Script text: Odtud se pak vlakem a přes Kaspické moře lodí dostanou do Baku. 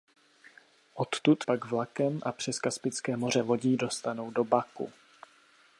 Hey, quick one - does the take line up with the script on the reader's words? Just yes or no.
no